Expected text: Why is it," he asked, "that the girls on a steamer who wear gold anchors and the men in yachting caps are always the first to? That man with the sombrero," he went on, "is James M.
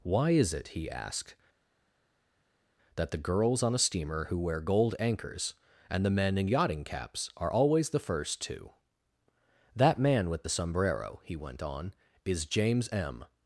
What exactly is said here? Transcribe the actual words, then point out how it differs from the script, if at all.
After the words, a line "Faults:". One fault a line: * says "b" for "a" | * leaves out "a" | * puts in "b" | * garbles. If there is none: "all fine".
Why is it," he asked, "that the girls on a steamer who wear gold anchors and the men in yachting caps are always the first to? That man with the sombrero," he went on, "is James M.
Faults:
all fine